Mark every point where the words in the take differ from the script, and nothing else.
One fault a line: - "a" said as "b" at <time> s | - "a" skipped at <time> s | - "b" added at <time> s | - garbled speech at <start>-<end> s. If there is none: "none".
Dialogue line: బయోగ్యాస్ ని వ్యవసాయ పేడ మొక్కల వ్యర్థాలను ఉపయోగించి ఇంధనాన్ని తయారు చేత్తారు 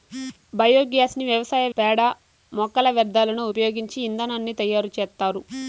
none